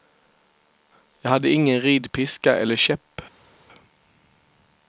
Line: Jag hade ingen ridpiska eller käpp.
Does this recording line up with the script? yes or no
yes